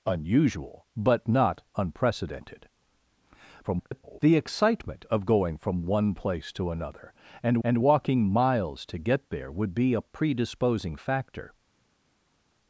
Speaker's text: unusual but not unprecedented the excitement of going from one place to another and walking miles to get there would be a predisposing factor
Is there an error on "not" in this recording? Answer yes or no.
no